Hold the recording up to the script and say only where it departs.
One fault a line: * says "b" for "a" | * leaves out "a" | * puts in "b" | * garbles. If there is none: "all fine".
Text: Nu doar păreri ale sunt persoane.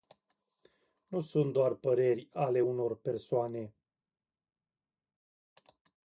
* puts in "sunt"
* says "unor" for "sunt"